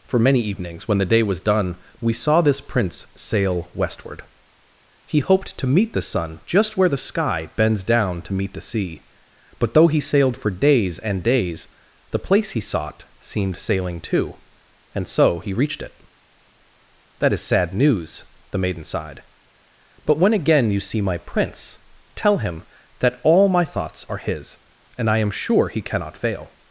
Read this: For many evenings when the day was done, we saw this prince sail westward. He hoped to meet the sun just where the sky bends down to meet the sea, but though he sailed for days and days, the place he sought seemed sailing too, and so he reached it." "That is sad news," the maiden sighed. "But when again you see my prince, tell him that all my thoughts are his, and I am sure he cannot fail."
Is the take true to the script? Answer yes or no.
yes